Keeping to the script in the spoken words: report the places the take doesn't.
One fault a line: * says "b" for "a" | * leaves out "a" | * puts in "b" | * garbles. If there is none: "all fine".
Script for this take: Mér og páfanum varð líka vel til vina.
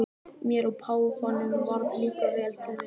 all fine